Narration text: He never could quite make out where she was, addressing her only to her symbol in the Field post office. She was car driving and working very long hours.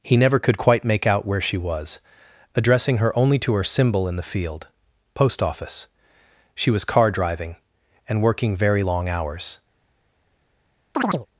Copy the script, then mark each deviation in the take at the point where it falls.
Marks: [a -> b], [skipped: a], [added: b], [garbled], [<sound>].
He never could quite make out where she was, addressing her only to her symbol in the Field post office. She was car driving and working very long hours. [chirp]